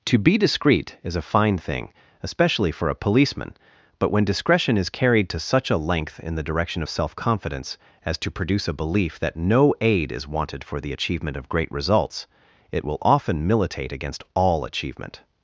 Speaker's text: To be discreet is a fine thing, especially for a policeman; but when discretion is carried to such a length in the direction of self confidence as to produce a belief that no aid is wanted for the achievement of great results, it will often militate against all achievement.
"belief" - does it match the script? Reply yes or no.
yes